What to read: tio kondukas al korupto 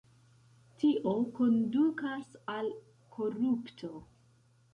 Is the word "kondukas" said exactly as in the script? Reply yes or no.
yes